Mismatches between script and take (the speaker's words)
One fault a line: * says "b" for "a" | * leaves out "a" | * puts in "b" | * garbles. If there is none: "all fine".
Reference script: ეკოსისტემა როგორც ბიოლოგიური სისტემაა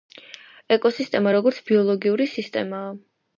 all fine